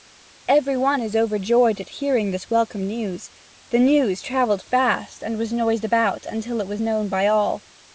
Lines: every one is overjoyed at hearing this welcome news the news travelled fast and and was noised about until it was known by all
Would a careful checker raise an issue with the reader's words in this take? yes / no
yes